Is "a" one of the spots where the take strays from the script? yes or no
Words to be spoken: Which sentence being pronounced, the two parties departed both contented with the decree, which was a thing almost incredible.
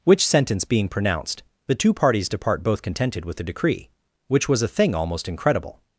no